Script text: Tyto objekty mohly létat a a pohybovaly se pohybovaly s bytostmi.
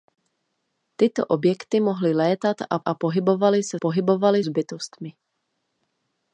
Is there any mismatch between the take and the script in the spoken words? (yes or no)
no